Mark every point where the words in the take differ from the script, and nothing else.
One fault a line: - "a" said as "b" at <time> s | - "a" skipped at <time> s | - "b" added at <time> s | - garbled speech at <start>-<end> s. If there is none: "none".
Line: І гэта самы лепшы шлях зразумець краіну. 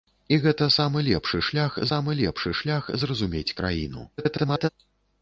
- "самы лепшы шлях" added at 1.9 s
- garbled speech at 4.2-4.7 s